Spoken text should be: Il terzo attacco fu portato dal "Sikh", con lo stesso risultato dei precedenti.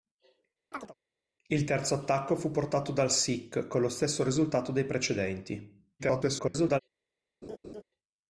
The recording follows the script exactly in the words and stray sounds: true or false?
false